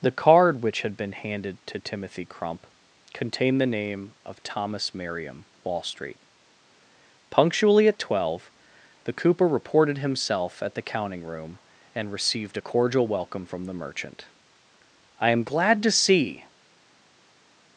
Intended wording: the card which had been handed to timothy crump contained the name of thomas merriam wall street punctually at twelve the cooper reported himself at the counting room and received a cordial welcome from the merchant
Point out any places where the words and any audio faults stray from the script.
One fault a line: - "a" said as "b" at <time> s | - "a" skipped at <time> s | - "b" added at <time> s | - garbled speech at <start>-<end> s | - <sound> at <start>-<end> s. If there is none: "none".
- "i am glad to see" added at 15.2 s